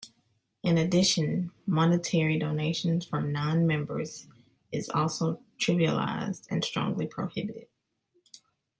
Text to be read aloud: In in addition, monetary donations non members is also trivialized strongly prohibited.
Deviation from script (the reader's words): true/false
true